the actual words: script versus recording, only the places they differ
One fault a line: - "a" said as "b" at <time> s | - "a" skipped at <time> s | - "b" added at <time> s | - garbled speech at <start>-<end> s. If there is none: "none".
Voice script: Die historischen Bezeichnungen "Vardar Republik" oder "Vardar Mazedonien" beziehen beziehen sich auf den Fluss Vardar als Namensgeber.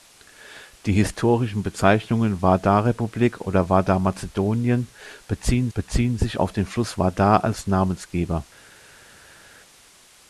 none